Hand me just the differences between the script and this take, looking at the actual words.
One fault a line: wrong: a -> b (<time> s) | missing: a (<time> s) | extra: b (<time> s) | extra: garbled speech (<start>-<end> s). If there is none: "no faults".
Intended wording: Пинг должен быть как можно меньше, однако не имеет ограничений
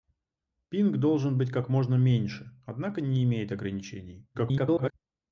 extra: garbled speech (4.3-4.9 s)